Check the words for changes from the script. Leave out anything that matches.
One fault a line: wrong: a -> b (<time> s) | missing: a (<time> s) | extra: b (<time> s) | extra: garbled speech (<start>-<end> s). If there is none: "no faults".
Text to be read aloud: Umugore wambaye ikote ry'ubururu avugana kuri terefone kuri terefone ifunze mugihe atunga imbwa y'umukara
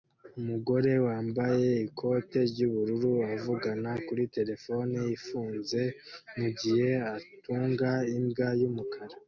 missing: kuri terefone (5.0 s)